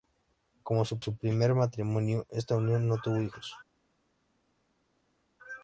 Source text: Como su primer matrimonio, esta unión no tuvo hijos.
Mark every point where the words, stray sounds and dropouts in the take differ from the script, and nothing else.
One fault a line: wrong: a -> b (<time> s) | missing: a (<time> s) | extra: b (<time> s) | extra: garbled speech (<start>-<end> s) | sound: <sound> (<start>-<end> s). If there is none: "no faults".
extra: su (1.0 s)